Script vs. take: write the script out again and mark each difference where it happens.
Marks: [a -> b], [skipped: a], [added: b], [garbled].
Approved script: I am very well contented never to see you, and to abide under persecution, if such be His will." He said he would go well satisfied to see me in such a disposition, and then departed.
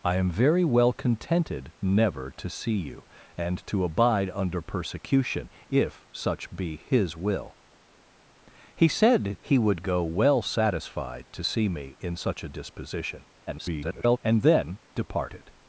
I am very well contented never to see you, and to abide under persecution, if such be His will." He said he would go well satisfied to see me in such a disposition, [garbled] and then departed.